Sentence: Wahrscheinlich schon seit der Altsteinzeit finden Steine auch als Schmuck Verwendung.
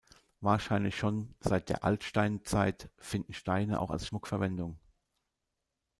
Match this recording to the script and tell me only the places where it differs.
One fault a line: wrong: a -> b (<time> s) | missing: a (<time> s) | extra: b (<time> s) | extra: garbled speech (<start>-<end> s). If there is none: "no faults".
no faults